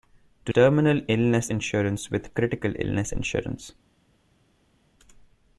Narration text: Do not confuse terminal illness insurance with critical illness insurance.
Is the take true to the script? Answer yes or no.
no